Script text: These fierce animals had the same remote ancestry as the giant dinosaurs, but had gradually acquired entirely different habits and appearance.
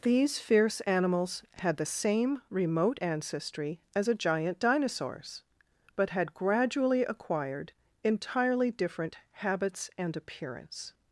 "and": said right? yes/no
yes